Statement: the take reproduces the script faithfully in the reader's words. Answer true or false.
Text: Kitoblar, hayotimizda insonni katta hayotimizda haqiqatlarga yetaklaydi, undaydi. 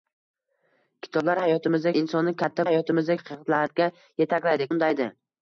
true